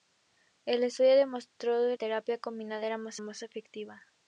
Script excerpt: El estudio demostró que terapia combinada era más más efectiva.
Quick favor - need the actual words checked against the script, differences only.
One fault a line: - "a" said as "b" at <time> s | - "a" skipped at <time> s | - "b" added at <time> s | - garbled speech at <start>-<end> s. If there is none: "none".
none